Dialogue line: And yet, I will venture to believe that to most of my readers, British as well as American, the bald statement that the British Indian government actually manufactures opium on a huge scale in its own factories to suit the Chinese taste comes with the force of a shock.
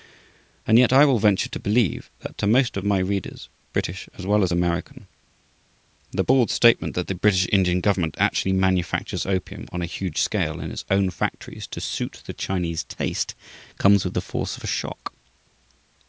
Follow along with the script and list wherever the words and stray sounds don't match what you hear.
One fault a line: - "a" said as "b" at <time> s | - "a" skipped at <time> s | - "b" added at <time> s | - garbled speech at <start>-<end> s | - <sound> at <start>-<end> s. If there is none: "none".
none